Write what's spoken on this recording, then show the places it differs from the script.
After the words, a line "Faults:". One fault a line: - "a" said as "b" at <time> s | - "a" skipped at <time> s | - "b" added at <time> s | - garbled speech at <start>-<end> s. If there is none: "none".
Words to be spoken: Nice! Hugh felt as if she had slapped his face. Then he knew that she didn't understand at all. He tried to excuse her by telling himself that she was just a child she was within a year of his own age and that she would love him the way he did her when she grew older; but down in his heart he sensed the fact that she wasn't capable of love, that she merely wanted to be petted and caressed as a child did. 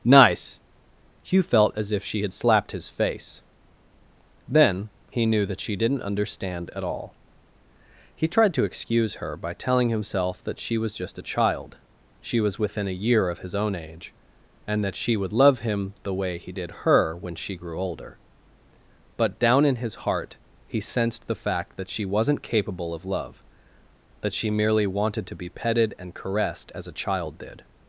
Nice! Hugh felt as if she had slapped his face. Then he knew that she didn't understand at all. He tried to excuse her by telling himself that she was just a child she was within a year of his own age and that she would love him the way he did her when she grew older; but down in his heart he sensed the fact that she wasn't capable of love, that she merely wanted to be petted and caressed as a child did.
Faults:
none